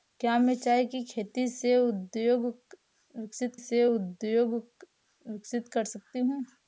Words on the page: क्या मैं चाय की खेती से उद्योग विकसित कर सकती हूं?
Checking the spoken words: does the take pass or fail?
fail